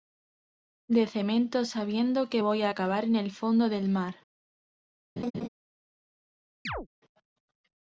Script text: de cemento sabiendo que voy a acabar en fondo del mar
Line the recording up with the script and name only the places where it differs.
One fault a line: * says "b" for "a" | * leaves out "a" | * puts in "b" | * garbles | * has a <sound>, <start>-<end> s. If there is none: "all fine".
* puts in "el"
* has a laugh, 5.2-5.5 s
* has a chirp, 6.7-6.9 s